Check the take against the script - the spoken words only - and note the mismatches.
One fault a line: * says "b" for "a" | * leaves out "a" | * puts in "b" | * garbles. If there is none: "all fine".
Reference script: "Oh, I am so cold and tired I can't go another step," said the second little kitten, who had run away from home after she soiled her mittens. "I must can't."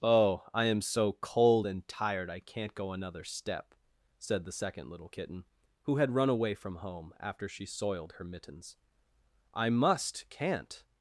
all fine